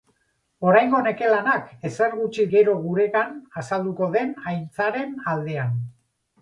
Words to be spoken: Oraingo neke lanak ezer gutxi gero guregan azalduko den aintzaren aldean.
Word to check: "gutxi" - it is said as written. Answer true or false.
true